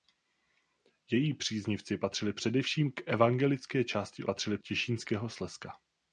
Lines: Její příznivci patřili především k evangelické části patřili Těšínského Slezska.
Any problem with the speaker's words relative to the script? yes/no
no